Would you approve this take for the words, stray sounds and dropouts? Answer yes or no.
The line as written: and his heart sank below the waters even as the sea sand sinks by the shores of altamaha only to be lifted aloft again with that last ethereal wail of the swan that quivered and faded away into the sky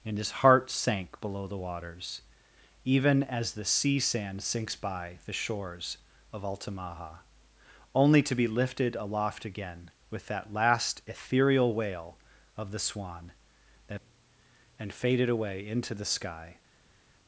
no